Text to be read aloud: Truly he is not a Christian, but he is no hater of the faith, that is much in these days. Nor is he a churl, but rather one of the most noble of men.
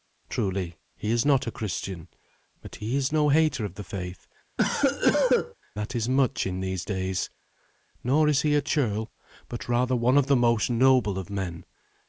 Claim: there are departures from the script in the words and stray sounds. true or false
true